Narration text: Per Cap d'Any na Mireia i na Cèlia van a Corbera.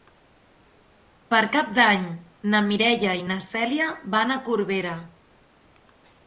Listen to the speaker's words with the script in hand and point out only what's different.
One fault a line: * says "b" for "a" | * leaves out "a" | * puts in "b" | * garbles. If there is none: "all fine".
all fine